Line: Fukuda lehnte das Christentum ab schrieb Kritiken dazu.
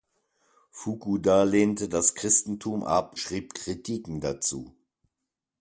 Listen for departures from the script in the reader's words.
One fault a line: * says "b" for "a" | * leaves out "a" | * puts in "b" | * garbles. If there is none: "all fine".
all fine